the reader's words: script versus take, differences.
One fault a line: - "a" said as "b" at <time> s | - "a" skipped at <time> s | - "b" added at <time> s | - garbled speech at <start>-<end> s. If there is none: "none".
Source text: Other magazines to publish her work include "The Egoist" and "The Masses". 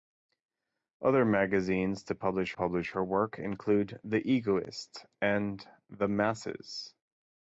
- "publish" added at 2.5 s